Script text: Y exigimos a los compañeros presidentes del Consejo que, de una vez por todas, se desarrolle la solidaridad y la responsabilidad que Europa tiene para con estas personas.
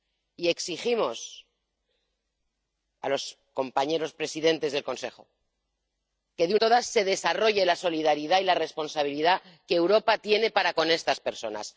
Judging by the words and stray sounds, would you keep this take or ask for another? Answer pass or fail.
fail